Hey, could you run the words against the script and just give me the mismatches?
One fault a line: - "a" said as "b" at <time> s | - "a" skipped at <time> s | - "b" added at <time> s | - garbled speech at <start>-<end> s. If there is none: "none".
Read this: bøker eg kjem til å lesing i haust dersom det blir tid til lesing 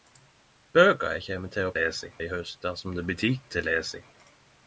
none